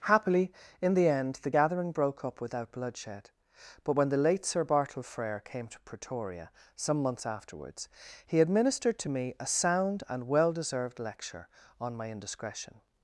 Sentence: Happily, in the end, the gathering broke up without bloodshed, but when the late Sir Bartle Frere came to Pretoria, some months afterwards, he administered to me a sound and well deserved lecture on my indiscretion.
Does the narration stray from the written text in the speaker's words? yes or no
no